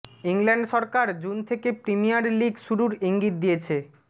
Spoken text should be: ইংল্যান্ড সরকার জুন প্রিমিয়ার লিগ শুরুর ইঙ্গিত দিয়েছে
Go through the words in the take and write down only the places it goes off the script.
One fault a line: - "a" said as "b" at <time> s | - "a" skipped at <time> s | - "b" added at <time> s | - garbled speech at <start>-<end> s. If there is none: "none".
- "থেকে" added at 1.5 s